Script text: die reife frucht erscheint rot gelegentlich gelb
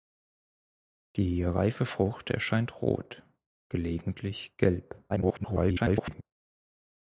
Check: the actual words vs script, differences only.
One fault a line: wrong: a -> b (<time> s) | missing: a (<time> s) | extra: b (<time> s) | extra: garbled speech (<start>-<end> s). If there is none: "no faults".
extra: garbled speech (5.1-6.2 s)